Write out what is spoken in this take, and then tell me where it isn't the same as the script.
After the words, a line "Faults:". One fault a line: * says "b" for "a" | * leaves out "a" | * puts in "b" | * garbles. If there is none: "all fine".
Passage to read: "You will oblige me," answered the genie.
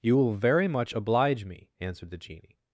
"You will very much oblige me," answered the genie.
Faults:
* puts in "very much"